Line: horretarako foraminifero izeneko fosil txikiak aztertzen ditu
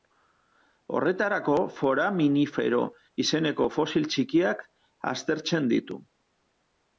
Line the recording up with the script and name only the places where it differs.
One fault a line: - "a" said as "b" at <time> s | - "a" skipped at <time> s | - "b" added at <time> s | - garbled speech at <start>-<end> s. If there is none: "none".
none